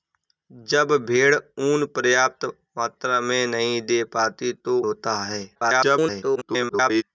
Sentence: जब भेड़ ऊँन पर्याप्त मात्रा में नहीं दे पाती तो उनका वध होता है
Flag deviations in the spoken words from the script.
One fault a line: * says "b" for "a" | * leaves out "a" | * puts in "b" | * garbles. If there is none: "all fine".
* leaves out "उनका वध"
* garbles